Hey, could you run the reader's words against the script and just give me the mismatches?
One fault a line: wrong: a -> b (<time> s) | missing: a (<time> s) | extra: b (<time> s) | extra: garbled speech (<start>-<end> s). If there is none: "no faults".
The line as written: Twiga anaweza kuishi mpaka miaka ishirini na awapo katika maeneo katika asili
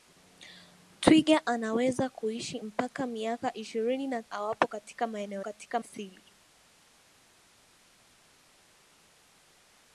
no faults